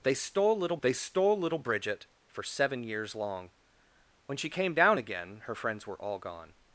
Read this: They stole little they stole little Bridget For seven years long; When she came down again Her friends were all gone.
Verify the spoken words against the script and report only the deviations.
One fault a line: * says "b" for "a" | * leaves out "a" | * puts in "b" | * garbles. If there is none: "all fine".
all fine